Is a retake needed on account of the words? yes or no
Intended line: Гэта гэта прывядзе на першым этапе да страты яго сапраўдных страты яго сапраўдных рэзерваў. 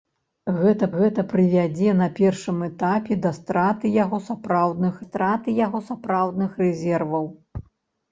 no